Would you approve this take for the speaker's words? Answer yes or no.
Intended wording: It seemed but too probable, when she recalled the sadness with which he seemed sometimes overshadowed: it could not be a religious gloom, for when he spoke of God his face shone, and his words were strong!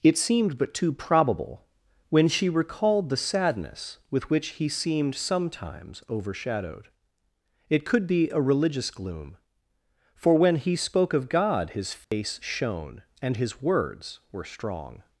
no